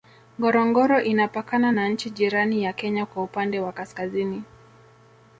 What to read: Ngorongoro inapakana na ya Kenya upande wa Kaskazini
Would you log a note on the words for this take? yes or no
yes